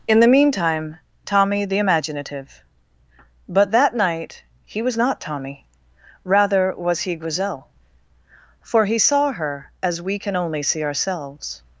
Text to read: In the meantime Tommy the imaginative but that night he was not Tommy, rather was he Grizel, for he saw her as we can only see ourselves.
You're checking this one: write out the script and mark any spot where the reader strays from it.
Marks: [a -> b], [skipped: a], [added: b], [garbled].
In the meantime Tommy the imaginative but that night he was not Tommy, rather was he Grizel, for he saw her as we can only see ourselves.